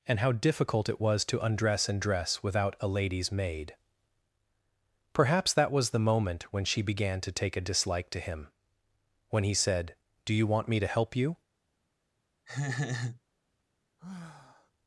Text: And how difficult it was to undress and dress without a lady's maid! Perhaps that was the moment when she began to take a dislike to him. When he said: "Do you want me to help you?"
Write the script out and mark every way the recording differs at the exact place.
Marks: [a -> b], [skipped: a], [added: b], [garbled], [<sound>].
And how difficult it was to undress and dress without a lady's maid! Perhaps that was the moment when she began to take a dislike to him. When he said: "Do you want me to help you?" [laugh] [sigh]